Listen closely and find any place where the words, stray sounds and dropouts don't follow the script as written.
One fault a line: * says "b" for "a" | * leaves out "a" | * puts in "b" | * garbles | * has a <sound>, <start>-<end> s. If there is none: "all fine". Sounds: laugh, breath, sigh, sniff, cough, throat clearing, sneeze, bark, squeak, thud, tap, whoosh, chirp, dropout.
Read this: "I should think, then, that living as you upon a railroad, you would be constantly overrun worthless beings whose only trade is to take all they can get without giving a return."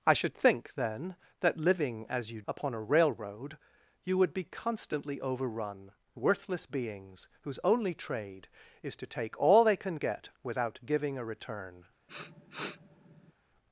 * has a sniff, 12.1-13.3 s